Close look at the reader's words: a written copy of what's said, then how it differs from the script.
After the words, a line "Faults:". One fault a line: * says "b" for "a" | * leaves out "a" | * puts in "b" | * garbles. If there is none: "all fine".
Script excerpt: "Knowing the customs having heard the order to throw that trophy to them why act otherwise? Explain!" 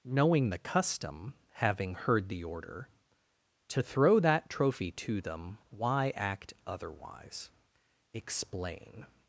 "Knowing the custom having heard the order to throw that trophy to them why act otherwise? Explain!"
Faults:
* says "custom" for "customs"